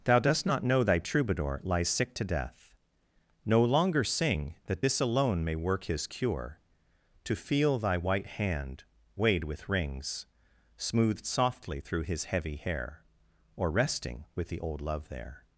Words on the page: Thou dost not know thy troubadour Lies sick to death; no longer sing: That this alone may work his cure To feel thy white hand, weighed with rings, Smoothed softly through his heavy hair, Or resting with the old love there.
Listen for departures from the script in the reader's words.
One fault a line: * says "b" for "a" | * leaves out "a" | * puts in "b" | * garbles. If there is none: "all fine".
all fine